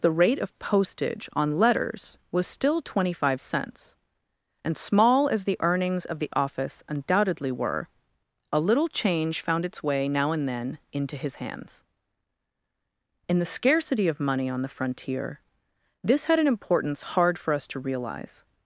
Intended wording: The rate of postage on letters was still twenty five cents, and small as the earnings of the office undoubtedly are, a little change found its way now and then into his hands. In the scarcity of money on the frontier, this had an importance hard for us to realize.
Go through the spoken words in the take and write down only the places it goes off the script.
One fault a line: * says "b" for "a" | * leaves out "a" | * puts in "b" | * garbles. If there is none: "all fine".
* says "were" for "are"